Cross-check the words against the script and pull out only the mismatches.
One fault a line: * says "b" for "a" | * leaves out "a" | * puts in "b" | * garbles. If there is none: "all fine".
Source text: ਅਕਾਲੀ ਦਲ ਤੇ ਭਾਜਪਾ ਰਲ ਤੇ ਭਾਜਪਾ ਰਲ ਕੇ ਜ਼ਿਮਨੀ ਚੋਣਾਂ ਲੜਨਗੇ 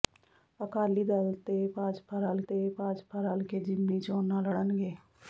all fine